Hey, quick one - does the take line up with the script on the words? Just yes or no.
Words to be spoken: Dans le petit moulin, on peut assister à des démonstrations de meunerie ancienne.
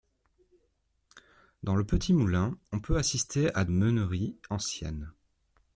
no